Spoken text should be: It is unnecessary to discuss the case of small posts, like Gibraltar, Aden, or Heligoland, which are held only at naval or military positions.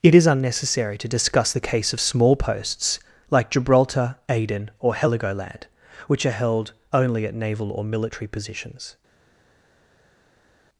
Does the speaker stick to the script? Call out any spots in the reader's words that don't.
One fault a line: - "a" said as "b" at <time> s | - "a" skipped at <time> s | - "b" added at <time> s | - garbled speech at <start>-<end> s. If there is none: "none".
none